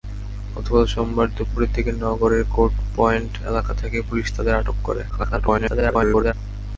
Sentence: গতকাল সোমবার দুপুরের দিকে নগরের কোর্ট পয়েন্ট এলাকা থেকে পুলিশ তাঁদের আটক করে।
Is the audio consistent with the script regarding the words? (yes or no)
no